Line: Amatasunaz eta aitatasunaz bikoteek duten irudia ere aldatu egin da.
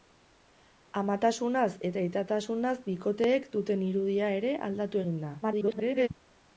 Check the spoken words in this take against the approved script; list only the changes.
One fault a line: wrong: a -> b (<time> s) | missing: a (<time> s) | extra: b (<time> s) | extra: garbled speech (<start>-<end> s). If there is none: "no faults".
extra: garbled speech (5.4-6.1 s)